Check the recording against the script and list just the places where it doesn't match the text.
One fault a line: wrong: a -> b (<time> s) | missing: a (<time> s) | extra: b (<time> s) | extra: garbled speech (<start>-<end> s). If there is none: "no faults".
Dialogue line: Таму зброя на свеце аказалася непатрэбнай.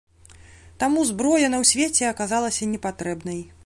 no faults